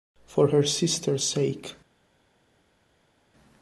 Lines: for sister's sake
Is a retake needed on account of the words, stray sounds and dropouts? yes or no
yes